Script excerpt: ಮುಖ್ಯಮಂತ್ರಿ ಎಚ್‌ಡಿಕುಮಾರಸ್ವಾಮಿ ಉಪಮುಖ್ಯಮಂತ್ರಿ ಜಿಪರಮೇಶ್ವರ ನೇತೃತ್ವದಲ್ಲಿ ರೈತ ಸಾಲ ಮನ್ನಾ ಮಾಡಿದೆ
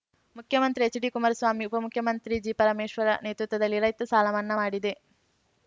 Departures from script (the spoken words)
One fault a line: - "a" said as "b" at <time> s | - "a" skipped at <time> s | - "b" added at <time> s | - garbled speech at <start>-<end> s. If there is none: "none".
none